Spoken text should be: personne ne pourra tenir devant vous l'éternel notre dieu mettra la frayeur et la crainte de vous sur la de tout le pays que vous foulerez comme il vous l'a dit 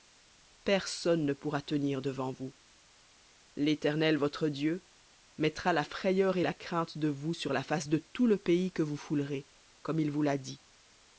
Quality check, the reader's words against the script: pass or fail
fail